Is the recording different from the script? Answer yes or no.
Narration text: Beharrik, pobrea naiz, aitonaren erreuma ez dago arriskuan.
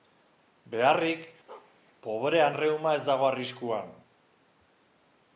yes